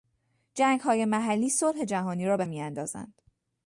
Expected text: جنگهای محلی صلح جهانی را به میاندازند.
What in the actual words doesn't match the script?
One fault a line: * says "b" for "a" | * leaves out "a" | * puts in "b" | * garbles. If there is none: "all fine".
all fine